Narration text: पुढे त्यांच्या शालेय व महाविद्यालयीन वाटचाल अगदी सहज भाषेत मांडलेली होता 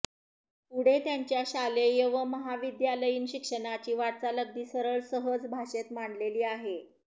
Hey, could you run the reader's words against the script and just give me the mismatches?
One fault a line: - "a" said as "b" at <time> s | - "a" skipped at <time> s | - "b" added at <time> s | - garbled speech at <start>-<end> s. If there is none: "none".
- "शिक्षणाची" added at 3.3 s
- "सरळ" added at 4.7 s
- "होता" said as "आहे" at 6.5 s